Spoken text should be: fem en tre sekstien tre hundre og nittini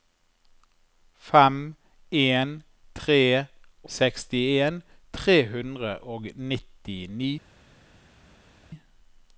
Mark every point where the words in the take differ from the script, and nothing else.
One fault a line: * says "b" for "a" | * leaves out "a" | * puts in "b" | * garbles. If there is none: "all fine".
all fine